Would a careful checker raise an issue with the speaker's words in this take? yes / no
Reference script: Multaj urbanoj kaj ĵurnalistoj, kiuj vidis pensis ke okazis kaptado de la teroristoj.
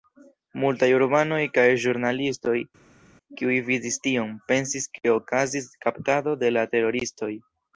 yes